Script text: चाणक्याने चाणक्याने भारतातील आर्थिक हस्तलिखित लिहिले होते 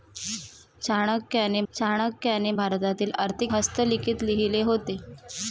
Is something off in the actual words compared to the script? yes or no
no